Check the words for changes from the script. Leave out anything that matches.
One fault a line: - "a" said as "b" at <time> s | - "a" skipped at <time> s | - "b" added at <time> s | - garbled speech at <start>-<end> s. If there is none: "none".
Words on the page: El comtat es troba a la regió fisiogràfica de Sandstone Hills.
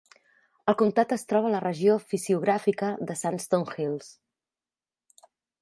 none